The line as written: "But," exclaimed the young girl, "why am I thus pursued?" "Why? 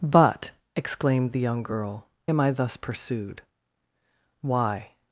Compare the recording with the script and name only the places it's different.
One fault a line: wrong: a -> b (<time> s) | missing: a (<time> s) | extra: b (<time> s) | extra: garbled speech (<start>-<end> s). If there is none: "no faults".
missing: why (2.1 s)